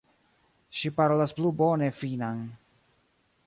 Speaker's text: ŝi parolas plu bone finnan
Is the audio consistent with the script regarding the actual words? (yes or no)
yes